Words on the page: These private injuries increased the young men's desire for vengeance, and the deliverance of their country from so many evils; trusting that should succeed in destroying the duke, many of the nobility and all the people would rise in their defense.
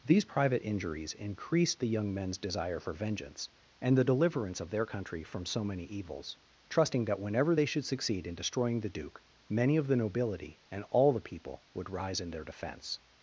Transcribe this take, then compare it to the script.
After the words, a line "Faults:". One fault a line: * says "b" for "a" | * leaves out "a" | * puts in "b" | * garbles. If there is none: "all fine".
These private injuries increased the young men's desire for vengeance, and the deliverance of their country from so many evils; trusting that whenever they should succeed in destroying the duke, many of the nobility and all the people would rise in their defense.
Faults:
* puts in "whenever they"